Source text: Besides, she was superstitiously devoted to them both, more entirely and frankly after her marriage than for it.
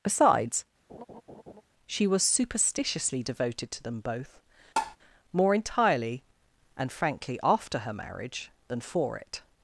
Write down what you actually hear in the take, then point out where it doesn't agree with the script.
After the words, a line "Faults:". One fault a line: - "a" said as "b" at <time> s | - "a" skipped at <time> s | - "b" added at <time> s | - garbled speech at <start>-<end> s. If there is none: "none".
Besides, she was superstitiously devoted to them both, more entirely and frankly after her marriage than for it.
Faults:
none